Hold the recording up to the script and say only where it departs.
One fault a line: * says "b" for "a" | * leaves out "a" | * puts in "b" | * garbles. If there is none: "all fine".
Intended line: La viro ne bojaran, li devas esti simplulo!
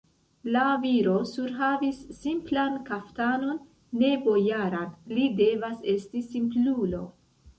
* puts in "surhavis simplan kaftanon"